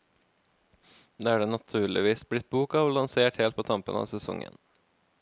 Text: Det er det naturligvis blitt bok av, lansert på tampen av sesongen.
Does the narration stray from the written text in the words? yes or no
yes